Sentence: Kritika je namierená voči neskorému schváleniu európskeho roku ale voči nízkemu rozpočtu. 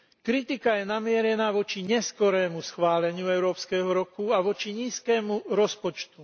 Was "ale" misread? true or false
true